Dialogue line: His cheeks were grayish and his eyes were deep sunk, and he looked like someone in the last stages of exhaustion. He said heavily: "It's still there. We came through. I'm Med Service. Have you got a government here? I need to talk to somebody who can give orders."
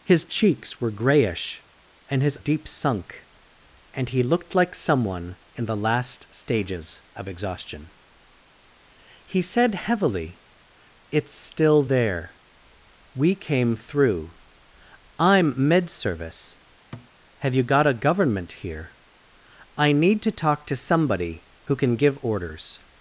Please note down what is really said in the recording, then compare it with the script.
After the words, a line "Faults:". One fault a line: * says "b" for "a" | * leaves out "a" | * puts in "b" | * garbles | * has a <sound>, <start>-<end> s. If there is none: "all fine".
His cheeks were grayish and his deep sunk, and he looked like someone in the last stages of exhaustion. He said heavily: "It's still there. We came through. I'm Med Service. Have you got a government here? I need to talk to somebody who can give orders."
Faults:
* leaves out "eyes were"
* has a thud, 16.9-17.1 s